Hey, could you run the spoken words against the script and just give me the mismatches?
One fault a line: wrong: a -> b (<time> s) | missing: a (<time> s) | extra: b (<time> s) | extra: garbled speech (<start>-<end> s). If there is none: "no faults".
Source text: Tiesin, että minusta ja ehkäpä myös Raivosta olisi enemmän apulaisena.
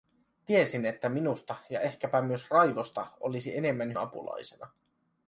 no faults